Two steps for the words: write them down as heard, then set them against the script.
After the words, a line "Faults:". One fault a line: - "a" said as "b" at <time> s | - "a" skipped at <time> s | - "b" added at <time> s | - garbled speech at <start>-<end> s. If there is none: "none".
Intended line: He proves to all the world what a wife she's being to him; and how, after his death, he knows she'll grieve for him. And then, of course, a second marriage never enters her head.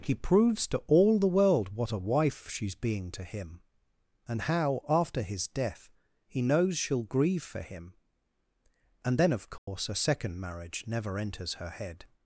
He proves to all the world what a wife she's being to him; and how, after his death, he knows she'll grieve for him. And then, of course, a second marriage never enters her head.
Faults:
none